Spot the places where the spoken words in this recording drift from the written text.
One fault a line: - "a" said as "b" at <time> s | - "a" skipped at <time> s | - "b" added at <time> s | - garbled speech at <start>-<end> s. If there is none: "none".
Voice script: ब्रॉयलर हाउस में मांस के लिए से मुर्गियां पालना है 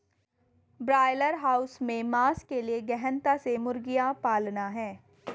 - "गहनता" added at 2.8 s